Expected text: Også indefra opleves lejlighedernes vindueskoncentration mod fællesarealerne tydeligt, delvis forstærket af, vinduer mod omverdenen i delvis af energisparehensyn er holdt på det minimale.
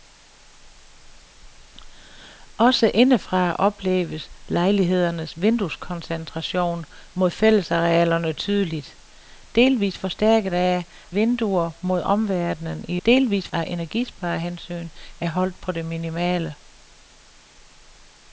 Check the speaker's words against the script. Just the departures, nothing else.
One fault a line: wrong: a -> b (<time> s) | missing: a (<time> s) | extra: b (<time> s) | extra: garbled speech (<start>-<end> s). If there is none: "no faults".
no faults